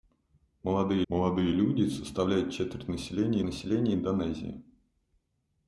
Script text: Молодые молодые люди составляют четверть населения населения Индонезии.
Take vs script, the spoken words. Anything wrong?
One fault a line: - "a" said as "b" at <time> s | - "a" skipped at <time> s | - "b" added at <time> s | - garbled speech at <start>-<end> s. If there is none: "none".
none